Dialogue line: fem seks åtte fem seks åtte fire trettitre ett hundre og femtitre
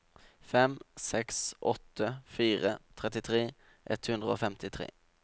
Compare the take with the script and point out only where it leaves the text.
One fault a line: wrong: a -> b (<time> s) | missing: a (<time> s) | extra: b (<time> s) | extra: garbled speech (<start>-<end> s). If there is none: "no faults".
missing: fem seks åtte (2.1 s)